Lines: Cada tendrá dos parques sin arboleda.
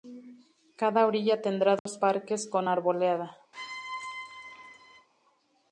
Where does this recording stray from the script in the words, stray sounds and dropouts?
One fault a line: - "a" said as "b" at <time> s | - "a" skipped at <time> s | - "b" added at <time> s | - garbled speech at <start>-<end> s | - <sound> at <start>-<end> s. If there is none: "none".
- "orilla" added at 1.1 s
- dropout at 1.8-1.9 s
- "sin" said as "con" at 2.5 s
- squeak at 3.5-5.1 s